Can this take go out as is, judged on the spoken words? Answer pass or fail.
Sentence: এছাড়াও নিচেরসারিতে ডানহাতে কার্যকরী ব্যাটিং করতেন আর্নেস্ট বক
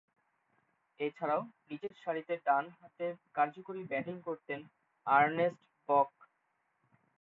pass